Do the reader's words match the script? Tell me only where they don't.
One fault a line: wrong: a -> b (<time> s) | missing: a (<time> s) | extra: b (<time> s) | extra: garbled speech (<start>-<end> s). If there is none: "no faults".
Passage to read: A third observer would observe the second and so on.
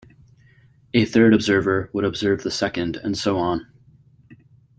no faults